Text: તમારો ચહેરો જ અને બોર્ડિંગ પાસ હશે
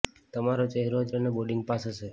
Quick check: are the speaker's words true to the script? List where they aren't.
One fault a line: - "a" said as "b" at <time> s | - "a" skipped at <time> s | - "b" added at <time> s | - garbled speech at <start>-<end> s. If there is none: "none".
none